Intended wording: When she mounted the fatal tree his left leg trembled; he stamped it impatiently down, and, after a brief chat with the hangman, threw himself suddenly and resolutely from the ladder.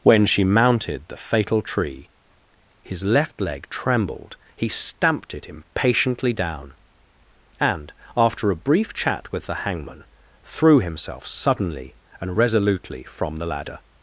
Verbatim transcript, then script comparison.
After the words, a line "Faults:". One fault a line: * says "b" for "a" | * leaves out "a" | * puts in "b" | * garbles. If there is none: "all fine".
When she mounted the fatal tree his left leg trembled; he stamped it impatiently down, and, after a brief chat with the hangman, threw himself suddenly and resolutely from the ladder.
Faults:
all fine